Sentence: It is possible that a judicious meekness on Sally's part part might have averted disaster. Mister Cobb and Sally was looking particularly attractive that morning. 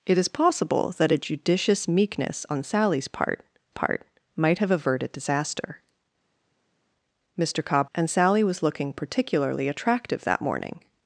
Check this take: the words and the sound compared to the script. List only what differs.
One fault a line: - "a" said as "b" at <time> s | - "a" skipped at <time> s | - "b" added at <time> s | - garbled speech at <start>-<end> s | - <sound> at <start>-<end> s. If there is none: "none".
none